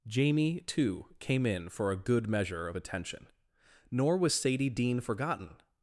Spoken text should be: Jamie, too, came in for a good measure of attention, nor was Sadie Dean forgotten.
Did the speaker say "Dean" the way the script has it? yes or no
yes